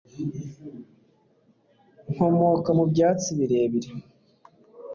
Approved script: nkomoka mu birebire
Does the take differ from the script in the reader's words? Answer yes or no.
yes